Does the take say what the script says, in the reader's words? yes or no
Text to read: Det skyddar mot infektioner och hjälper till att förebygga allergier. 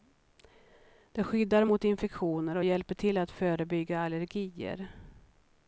yes